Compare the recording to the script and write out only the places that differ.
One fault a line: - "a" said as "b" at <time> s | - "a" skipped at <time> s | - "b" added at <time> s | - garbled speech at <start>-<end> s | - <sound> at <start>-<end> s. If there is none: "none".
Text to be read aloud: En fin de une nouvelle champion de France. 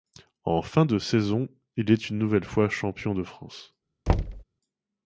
- "saison il est" added at 1.0 s
- "fois" added at 2.4 s
- thud at 4.1-4.4 s